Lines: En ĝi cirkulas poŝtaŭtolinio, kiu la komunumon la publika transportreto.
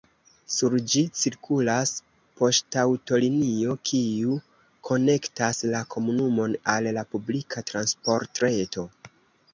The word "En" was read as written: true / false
false